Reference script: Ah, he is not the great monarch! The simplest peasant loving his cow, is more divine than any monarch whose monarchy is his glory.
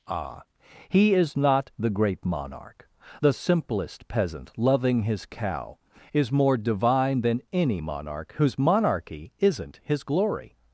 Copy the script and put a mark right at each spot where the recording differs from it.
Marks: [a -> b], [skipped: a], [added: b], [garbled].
Ah, he is not the great monarch! The simplest peasant loving his cow, is more divine than any monarch whose monarchy [is -> isn't] his glory.